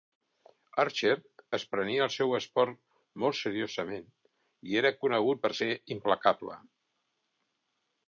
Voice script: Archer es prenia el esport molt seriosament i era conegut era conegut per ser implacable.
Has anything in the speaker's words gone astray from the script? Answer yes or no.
yes